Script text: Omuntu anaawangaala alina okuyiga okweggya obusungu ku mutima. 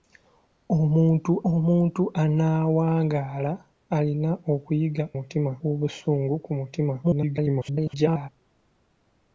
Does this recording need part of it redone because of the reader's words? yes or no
yes